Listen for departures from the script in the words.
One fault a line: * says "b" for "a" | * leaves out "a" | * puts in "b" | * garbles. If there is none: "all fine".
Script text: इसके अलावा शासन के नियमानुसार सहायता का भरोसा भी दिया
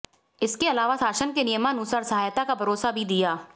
all fine